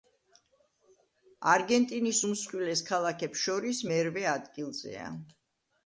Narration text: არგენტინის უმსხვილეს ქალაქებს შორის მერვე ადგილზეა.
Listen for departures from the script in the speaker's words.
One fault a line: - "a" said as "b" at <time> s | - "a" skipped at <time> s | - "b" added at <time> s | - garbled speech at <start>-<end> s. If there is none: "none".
none